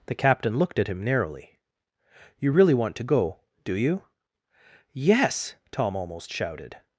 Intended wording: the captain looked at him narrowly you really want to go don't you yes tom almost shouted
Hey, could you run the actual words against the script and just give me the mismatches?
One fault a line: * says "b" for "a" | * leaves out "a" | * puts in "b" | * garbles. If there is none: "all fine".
* says "do" for "don't"